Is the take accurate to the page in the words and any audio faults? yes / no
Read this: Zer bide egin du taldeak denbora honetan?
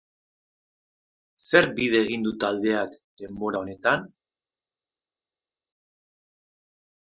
yes